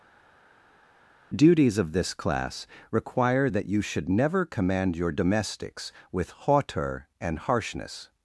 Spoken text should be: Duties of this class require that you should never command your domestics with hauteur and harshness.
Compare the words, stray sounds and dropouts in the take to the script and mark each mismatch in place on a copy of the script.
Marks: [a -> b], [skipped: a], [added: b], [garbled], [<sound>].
Duties of this class require that you should never command your domestics with hauteur and harshness.